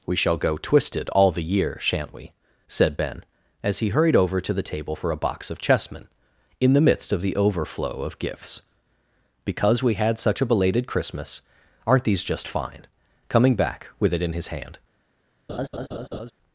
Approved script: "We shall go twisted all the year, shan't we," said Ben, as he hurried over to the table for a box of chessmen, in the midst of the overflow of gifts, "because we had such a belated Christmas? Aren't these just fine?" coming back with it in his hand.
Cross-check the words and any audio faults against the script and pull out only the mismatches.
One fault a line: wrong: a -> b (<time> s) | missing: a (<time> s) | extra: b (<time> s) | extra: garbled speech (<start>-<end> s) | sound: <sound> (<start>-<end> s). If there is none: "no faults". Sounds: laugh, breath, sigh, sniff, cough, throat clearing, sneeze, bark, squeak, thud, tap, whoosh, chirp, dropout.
sound: laugh (15.5-16.3 s)